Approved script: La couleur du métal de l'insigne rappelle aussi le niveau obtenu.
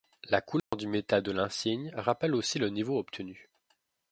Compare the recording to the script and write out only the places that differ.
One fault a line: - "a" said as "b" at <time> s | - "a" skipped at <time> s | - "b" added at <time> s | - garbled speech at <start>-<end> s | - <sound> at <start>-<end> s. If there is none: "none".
- dropout at 0.6-0.7 s